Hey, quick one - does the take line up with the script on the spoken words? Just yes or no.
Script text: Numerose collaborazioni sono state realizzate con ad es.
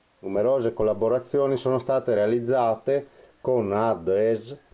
yes